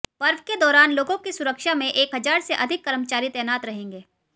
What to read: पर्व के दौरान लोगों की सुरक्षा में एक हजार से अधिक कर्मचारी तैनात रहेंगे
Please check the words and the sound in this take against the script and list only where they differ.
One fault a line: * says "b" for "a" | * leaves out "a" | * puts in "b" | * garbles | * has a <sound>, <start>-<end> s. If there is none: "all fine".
all fine